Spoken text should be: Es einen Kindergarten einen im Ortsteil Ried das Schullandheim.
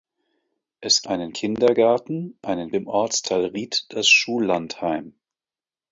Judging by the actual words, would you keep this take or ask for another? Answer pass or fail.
pass